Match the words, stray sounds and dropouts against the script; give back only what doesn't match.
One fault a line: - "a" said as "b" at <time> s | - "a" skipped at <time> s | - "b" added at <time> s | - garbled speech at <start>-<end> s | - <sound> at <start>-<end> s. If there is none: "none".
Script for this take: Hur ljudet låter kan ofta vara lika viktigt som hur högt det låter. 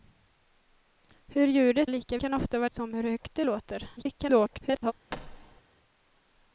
- "låter" said as "lika" at 1.9 s
- "lika viktigt" skipped at 2.7 s
- garbled speech at 4.0-4.9 s
- thud at 5.1-5.6 s